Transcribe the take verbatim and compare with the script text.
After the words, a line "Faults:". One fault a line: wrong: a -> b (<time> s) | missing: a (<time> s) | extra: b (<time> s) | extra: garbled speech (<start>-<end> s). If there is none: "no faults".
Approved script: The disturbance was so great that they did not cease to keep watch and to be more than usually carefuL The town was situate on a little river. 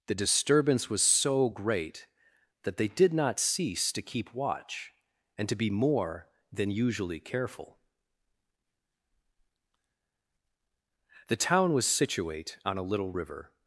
The disturbance was so great that they did not cease to keep watch and to be more than usually carefuL The town was situate on a little river.
Faults:
no faults